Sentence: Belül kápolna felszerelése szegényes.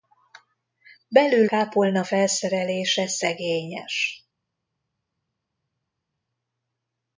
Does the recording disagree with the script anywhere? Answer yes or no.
no